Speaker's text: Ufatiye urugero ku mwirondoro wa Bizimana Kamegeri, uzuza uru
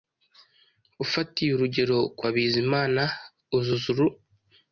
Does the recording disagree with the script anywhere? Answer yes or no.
yes